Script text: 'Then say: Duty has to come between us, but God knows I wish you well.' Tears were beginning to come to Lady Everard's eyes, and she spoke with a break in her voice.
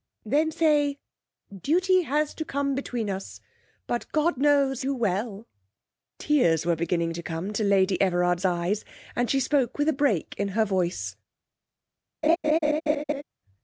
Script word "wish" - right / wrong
wrong